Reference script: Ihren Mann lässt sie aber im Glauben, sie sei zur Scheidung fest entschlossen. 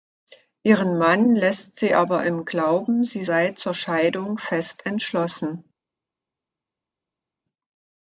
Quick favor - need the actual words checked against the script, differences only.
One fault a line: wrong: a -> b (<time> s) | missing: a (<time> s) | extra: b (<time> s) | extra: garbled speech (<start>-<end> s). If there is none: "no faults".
no faults